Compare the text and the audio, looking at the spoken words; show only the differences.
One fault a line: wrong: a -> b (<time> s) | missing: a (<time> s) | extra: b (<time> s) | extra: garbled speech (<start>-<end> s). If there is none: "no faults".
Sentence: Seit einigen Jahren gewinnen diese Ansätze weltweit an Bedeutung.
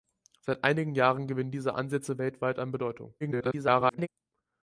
extra: garbled speech (3.2-4.1 s)